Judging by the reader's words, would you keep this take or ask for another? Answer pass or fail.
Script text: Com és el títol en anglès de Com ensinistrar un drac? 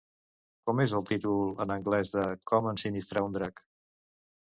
pass